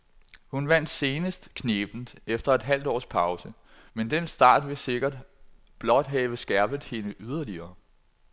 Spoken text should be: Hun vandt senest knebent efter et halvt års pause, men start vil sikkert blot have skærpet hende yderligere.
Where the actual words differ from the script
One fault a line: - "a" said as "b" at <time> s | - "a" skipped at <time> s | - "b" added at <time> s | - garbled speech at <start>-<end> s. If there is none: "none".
- "den" added at 4.1 s